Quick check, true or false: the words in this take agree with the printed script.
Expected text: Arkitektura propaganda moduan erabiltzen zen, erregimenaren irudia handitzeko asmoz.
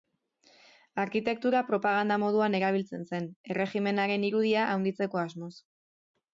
true